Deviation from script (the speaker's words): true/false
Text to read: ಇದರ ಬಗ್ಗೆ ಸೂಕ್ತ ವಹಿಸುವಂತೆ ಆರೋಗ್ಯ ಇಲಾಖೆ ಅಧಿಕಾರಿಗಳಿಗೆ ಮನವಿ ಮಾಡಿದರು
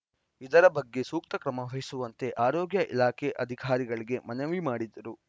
true